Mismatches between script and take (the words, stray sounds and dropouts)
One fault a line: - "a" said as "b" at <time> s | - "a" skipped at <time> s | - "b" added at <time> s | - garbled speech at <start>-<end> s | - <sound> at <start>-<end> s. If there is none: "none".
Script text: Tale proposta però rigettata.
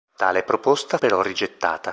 none